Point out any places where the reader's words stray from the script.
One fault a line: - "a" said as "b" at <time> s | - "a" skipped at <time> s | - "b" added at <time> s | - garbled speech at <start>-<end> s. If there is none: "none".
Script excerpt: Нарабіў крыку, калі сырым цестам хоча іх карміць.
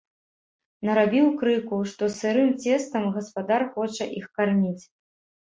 - "калі" said as "што" at 1.9 s
- "гаспадар" added at 3.2 s